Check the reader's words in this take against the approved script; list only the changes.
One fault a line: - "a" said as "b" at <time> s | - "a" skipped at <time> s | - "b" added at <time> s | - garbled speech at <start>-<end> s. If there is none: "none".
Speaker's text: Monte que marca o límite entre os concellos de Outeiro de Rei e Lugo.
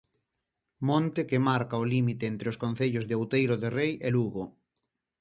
none